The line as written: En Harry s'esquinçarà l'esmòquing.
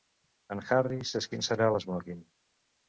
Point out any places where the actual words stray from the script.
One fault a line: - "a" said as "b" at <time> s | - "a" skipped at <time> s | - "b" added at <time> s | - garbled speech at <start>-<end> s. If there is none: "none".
none